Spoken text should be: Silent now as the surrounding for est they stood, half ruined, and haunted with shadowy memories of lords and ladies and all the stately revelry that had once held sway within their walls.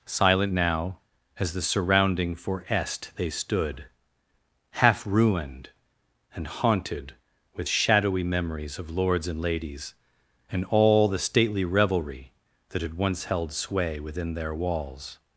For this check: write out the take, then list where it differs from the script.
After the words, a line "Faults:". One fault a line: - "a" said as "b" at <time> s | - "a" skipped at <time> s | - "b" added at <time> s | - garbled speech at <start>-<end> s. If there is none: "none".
Silent now as the surrounding for est they stood, half ruined, and haunted with shadowy memories of lords and ladies and all the stately revelry that had once held sway within their walls.
Faults:
none